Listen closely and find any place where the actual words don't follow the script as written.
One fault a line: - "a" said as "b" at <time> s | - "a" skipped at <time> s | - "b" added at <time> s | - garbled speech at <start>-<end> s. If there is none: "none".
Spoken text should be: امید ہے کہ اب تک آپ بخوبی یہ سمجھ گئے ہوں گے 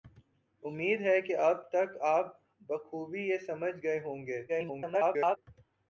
- garbled speech at 4.5-5.4 s